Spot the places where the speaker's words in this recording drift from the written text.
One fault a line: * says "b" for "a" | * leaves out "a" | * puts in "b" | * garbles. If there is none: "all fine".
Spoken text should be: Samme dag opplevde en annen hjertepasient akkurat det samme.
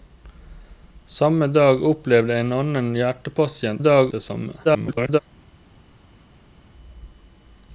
* says "dag" for "akkurat"
* garbles